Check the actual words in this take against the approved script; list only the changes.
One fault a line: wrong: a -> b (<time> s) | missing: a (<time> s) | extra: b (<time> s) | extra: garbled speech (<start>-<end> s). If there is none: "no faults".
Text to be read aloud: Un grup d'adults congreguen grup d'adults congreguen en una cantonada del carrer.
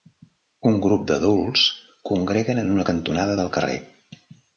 missing: grup d'adults congreguen (2.6 s)